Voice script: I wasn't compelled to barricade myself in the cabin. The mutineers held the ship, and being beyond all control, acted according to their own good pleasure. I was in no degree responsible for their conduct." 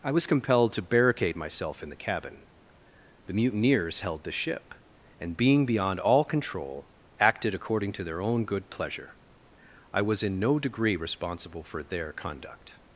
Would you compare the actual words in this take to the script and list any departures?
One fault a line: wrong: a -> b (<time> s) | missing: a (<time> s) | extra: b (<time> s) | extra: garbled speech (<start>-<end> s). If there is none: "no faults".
wrong: wasn't -> was (0.1 s)